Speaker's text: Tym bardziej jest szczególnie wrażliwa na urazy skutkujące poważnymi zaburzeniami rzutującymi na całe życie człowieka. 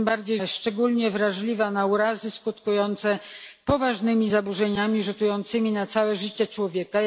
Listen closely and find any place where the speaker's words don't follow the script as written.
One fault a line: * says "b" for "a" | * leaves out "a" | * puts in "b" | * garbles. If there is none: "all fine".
all fine